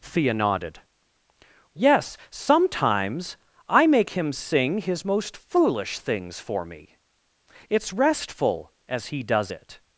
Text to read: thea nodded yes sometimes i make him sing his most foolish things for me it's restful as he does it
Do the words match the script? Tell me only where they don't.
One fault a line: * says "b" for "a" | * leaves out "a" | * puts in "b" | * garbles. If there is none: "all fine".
all fine